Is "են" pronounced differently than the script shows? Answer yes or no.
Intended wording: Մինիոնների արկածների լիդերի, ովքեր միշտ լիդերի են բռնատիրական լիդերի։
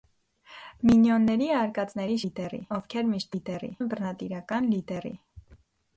no